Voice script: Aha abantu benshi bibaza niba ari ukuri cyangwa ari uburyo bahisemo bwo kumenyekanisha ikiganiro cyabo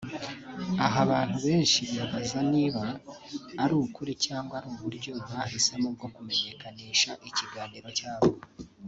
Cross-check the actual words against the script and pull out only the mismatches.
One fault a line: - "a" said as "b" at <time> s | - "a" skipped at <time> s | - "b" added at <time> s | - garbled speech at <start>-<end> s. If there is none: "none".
none